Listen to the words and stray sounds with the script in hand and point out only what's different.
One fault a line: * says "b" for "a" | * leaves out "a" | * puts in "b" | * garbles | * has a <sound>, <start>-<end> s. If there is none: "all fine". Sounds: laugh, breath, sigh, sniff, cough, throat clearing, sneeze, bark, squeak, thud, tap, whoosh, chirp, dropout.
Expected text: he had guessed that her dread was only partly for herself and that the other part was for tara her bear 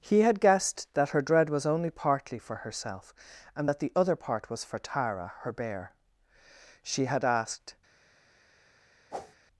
* puts in "she had asked"
* has a whoosh, 9.1-9.4 s